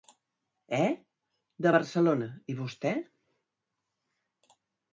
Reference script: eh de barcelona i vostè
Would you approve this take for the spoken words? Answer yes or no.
yes